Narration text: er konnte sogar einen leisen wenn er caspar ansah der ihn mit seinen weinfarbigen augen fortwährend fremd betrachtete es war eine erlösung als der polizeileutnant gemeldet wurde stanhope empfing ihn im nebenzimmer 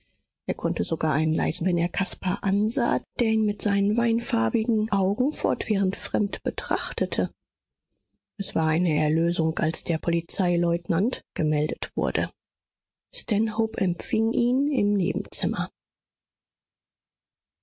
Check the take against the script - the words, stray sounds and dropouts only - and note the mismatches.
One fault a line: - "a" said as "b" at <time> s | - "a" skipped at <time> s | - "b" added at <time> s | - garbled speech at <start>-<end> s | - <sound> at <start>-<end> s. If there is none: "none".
none